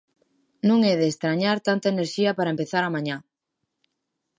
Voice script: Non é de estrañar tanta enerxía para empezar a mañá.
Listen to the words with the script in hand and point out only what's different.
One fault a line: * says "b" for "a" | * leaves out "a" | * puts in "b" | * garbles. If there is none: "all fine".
all fine